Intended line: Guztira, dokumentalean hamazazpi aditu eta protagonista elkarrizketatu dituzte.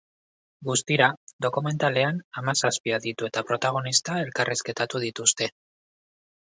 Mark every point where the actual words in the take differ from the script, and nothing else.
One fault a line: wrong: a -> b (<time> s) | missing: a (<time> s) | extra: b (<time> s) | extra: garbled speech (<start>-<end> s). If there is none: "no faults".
no faults